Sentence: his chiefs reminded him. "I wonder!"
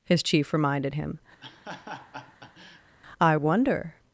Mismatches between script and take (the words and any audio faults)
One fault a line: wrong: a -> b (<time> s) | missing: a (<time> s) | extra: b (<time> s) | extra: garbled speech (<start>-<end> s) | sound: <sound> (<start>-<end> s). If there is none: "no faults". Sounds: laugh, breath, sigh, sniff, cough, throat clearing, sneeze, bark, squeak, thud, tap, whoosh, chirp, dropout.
wrong: chiefs -> chief (0.2 s)
sound: laugh (1.4-3.0 s)